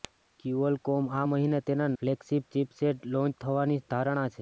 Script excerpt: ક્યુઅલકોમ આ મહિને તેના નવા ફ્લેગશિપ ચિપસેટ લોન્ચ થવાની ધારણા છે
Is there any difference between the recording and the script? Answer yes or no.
yes